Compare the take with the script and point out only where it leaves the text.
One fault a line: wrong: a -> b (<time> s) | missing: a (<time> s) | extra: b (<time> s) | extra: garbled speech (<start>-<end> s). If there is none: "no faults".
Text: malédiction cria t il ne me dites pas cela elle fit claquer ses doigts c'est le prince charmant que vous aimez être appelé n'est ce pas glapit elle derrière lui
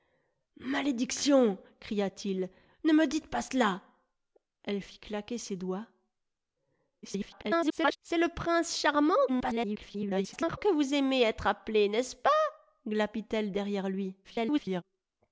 extra: garbled speech (7.0-8.0 s)
extra: garbled speech (9.3-10.6 s)
extra: garbled speech (14.2-14.8 s)